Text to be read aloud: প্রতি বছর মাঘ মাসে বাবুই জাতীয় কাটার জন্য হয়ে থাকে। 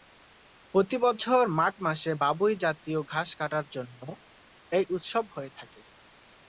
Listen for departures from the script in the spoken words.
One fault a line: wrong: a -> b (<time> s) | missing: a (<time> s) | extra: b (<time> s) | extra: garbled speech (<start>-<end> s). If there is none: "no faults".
extra: ঘাস (3.1 s)
extra: এই উৎসব (4.7 s)